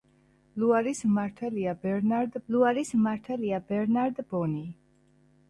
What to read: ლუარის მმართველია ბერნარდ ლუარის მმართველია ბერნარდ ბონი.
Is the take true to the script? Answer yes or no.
yes